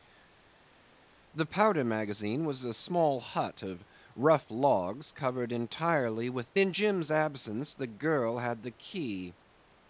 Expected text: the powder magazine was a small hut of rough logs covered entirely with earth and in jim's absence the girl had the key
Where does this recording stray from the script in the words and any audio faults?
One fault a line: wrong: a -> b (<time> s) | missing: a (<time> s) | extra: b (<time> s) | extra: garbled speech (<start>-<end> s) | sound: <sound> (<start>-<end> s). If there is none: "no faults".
missing: earth and (6.5 s)